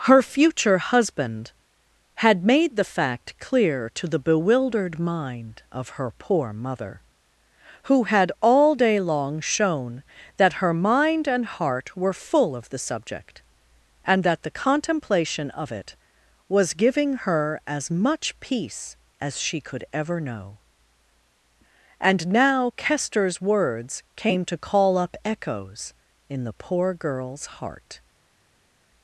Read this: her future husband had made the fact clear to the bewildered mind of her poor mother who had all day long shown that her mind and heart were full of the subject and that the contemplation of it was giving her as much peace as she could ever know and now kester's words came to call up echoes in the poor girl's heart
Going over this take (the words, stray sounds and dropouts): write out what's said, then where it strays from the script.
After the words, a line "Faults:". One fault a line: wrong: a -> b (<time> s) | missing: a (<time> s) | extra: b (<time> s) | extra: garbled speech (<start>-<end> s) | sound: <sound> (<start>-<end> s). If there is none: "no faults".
her future husband had made the fact clear to the bewildered mind of her poor mother who had all day long shown that her mind and heart were full of the subject and that the contemplation of it was giving her as much peace as she could ever know and now kester's words came to call up echoes in the poor girl's heart
Faults:
no faults